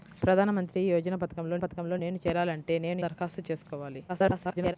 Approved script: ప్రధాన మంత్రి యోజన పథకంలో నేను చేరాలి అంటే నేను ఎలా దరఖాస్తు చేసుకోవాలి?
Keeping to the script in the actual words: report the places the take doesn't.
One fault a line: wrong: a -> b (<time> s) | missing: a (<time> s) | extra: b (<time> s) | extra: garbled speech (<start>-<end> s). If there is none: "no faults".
extra: పథకంలో (1.6 s)
missing: ఎలా (3.0 s)
extra: garbled speech (4.1-4.8 s)